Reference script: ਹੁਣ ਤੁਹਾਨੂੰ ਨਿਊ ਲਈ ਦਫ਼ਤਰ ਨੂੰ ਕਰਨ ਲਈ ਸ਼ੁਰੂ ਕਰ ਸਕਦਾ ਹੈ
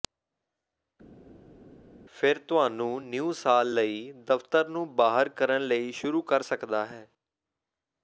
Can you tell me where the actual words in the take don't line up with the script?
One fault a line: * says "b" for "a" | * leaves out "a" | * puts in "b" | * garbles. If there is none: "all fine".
* says "ਫਿਰ" for "ਹੁਣ"
* puts in "ਸਾਲ"
* puts in "ਬਾਹਰ"